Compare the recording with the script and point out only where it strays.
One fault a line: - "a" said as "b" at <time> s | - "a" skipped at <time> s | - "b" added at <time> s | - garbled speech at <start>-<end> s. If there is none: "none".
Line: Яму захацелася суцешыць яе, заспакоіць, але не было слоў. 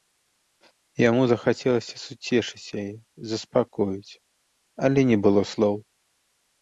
none